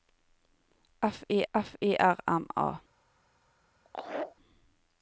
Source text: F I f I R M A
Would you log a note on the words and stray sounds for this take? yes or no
yes